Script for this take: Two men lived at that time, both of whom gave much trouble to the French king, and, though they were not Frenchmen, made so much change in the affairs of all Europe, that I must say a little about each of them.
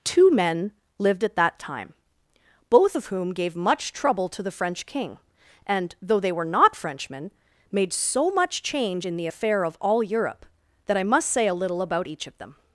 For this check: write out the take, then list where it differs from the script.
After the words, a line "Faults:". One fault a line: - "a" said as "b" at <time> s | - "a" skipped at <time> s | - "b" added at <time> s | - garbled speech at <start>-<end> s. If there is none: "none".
Two men lived at that time, both of whom gave much trouble to the French king, and, though they were not Frenchmen, made so much change in the affair of all Europe, that I must say a little about each of them.
Faults:
- "affairs" said as "affair" at 9.3 s